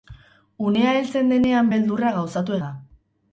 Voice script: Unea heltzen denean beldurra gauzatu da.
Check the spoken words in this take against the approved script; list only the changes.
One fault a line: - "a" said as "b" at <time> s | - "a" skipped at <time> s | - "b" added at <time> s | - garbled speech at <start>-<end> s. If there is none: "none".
none